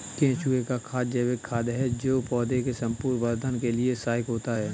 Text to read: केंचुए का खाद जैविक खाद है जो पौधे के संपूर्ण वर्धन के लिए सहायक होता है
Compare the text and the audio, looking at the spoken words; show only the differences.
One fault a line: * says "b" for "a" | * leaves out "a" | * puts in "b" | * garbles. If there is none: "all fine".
all fine